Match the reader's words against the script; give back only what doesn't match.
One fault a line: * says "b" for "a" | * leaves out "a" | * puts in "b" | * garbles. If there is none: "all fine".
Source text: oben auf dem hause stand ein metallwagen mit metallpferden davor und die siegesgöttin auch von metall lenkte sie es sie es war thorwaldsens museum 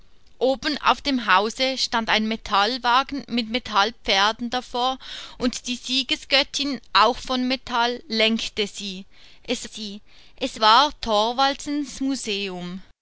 all fine